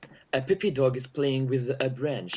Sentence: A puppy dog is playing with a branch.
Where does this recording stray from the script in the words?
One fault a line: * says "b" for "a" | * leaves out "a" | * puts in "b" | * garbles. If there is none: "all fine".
all fine